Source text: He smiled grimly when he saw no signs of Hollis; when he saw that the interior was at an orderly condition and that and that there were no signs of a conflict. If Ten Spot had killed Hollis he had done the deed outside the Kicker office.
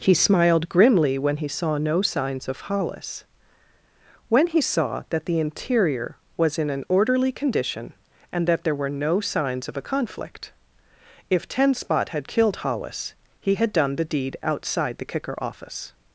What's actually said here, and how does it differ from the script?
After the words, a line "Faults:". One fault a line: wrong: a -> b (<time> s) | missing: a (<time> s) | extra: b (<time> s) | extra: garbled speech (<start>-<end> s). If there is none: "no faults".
He smiled grimly when he saw no signs of Hollis; when he saw that the interior was in an orderly condition and that there were no signs of a conflict. If Ten Spot had killed Hollis he had done the deed outside the Kicker office.
Faults:
wrong: at -> in (6.6 s)
missing: and that (8.6 s)